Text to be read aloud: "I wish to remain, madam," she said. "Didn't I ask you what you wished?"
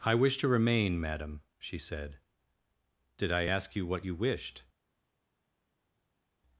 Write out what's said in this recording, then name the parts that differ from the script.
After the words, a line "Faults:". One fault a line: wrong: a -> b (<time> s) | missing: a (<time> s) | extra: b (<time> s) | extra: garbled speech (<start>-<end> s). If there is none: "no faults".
"I wish to remain, madam," she said. "Did I ask you what you wished?"
Faults:
wrong: Didn't -> Did (3.2 s)